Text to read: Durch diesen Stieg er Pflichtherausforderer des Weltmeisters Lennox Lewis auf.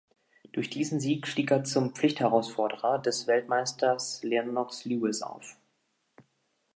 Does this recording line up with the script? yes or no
no